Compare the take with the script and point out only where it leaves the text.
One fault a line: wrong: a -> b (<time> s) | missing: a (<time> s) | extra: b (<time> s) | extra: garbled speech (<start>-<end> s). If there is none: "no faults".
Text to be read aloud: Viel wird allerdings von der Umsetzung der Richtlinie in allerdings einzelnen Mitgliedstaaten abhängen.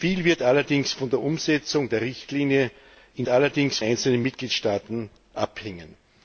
no faults